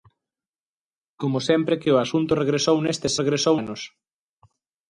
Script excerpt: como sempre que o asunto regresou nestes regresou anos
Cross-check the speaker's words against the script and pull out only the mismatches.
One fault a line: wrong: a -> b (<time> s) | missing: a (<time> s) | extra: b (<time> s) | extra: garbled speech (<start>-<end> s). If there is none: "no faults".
no faults